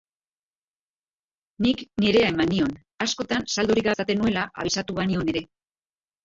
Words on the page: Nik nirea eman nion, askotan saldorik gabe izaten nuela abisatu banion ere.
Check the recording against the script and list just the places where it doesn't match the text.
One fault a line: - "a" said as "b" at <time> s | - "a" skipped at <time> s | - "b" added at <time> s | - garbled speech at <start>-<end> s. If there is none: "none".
- "gabe" skipped at 3.9 s